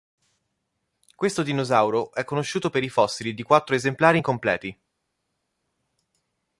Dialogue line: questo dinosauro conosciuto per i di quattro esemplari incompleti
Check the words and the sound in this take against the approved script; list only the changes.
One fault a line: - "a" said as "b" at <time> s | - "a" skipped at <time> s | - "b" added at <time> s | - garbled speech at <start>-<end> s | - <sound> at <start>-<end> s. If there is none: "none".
- "è" added at 2.1 s
- "fossili" added at 2.9 s